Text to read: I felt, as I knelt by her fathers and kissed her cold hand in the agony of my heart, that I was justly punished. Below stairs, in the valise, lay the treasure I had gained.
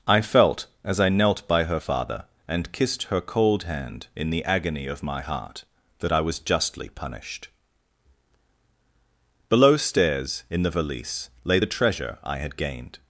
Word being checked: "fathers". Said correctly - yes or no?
no